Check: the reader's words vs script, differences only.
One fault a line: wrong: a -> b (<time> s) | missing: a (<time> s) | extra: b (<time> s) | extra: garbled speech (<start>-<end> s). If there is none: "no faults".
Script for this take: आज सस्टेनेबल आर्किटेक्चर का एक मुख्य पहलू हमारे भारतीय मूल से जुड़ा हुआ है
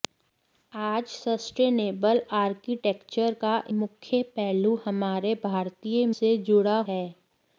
missing: एक (3.5 s)
missing: मूल (6.1 s)
missing: हुआ (6.8 s)